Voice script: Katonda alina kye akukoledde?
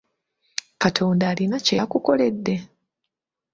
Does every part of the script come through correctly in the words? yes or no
yes